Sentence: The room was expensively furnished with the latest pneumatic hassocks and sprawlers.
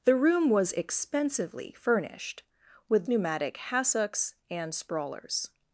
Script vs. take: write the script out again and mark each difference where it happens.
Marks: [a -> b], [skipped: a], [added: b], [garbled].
The room was expensively furnished with [skipped: the latest] pneumatic hassocks and sprawlers.